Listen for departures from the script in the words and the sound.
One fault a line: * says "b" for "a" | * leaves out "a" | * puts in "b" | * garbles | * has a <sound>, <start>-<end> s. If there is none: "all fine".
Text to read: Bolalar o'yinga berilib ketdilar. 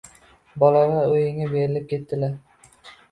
all fine